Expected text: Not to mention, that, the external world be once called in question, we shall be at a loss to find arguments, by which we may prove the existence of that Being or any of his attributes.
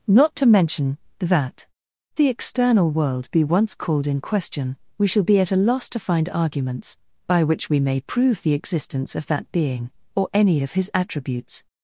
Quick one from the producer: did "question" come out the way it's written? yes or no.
yes